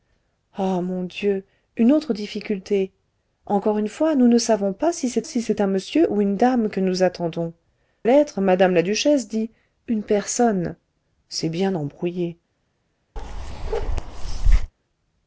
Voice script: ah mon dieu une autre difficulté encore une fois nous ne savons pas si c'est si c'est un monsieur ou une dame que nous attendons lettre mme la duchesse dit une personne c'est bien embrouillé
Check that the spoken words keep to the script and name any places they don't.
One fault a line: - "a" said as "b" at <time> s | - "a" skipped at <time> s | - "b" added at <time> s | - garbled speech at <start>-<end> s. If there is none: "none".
none